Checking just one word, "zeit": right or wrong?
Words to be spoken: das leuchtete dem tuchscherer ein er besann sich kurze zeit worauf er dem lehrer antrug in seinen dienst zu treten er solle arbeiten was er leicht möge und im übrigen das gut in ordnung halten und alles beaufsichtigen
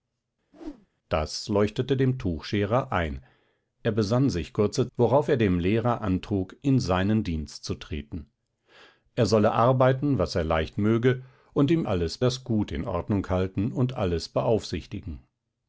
wrong